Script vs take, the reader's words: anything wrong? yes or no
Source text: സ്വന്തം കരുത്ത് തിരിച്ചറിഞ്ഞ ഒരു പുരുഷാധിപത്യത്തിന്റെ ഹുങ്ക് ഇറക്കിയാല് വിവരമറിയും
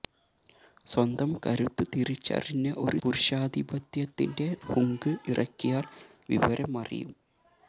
no